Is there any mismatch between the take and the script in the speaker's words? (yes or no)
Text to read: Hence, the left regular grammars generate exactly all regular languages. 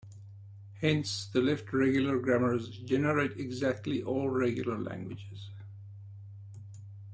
no